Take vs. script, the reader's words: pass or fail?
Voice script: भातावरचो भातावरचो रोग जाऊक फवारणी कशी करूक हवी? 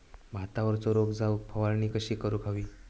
fail